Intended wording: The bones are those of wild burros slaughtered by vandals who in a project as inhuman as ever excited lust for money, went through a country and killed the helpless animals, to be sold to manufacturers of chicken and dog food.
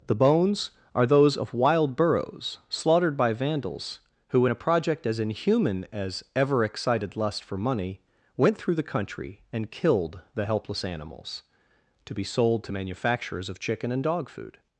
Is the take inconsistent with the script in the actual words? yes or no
yes